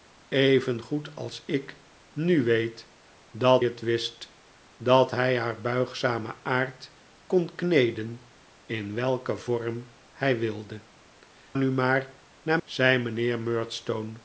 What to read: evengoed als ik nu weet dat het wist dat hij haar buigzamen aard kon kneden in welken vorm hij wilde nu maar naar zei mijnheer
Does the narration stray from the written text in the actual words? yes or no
no